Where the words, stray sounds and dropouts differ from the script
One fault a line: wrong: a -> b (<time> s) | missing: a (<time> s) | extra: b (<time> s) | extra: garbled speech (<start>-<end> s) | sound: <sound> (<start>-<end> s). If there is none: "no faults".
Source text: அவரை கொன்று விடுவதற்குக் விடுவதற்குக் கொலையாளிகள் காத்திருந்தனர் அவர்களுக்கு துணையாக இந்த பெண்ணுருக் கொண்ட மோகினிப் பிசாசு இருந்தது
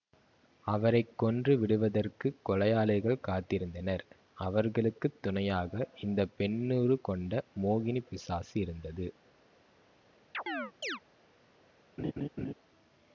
missing: விடுவதற்குக் (2.4 s)
sound: chirp (10.3-11.0 s)
sound: laugh (12.0-12.5 s)